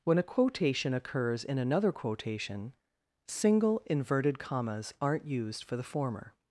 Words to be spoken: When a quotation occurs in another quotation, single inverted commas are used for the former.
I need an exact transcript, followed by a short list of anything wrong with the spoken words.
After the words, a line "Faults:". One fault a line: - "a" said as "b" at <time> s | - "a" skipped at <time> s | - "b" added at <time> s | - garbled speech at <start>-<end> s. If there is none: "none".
When a quotation occurs in another quotation, single inverted commas aren't used for the former.
Faults:
- "are" said as "aren't" at 5.0 s